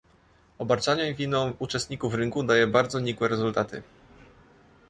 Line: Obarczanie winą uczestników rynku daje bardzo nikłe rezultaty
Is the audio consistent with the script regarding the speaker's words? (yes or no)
yes